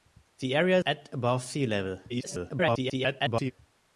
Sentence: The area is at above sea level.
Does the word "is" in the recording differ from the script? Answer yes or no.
yes